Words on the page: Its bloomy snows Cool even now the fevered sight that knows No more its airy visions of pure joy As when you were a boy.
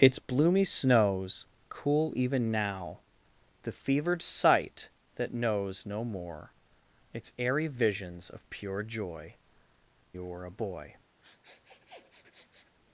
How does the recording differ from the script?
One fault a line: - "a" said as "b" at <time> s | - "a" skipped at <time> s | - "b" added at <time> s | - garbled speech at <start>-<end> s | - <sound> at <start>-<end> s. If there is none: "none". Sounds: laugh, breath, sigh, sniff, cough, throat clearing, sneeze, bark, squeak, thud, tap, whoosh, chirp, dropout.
- "As when" skipped at 9.3 s
- sniff at 11.2-12.8 s